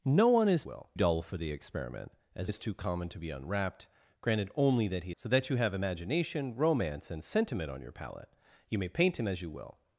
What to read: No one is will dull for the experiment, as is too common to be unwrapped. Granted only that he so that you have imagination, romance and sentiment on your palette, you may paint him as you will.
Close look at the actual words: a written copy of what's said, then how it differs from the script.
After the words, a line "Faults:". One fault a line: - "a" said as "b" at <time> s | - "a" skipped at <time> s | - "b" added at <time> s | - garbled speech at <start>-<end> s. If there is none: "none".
No one is will dull for the experiment, as is too common to be unwrapped. Granted only that he so that you have imagination, romance and sentiment on your palette, you may paint him as you will.
Faults:
none